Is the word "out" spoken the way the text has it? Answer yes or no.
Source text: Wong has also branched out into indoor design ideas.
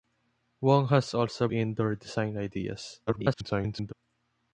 no